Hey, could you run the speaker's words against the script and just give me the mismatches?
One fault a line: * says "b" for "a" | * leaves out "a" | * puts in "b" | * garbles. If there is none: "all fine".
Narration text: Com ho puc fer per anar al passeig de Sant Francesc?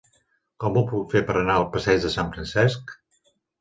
all fine